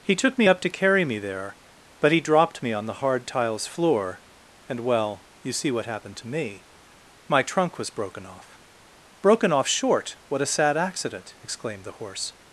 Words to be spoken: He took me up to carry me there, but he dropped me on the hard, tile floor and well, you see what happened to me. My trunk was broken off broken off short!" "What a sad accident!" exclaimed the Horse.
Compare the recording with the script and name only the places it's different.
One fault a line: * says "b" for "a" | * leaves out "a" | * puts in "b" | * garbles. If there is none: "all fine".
* says "tiles" for "tile"